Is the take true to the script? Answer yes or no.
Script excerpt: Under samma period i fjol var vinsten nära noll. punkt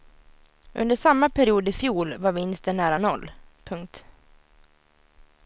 yes